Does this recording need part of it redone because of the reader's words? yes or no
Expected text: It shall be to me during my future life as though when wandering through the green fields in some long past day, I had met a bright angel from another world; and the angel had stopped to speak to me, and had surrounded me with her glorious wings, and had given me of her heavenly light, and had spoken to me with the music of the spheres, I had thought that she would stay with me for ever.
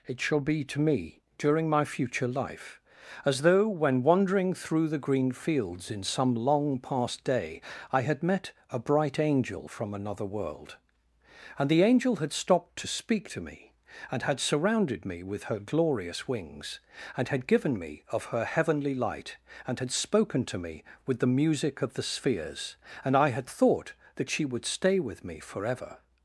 yes